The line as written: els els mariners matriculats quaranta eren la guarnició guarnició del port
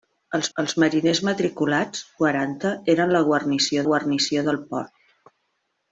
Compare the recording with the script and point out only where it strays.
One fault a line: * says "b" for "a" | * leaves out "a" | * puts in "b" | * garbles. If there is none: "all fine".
all fine